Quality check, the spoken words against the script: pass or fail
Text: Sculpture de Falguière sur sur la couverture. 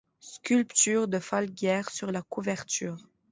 fail